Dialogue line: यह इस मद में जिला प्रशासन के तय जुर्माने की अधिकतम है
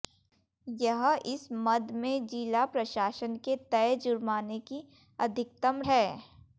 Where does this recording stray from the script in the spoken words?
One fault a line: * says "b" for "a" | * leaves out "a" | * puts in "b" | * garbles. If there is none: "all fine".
all fine